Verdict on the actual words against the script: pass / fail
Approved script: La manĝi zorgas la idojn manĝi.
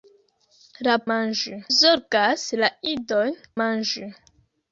pass